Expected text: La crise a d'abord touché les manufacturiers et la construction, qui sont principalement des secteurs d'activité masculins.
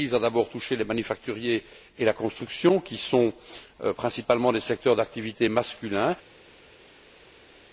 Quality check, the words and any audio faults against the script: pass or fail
pass